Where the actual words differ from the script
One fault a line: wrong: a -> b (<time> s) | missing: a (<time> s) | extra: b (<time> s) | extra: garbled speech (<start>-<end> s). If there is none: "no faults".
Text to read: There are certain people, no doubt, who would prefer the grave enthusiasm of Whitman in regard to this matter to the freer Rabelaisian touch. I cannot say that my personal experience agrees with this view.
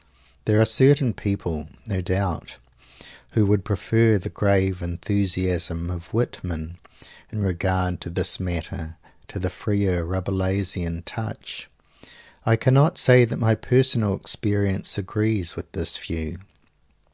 no faults